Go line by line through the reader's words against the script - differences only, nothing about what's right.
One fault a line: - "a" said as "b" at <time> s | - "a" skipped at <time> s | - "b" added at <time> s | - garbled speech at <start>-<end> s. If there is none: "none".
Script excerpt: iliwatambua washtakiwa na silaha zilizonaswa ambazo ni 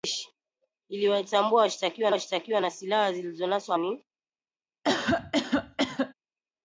- "washtakiwa" added at 2.1 s
- "ambazo" skipped at 3.8 s